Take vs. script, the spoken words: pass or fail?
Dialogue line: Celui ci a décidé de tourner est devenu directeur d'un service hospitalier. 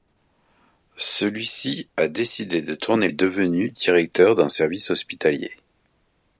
pass